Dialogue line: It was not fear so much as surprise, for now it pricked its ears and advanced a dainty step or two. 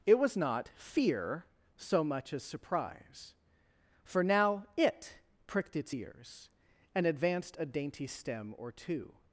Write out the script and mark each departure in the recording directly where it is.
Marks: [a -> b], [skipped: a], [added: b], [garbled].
It was not fear so much as surprise, for now it pricked its ears and advanced a dainty [step -> stem] or two.